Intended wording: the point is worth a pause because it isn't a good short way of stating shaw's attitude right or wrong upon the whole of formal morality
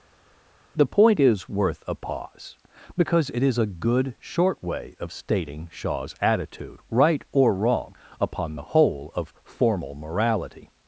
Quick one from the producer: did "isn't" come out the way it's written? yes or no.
no